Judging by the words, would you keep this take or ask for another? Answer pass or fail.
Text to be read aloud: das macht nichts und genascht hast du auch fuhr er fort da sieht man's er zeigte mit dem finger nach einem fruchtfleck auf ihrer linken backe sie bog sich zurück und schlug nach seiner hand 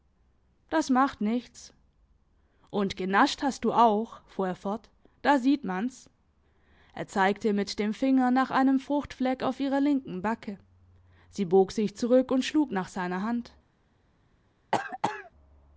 pass